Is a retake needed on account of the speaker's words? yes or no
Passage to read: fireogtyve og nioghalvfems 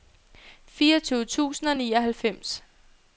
yes